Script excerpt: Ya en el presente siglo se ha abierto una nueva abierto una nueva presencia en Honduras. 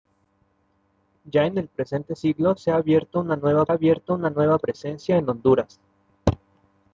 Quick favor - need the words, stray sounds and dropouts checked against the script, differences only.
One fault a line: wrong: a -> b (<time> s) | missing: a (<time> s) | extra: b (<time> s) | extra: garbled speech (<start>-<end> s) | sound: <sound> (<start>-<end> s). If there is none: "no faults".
no faults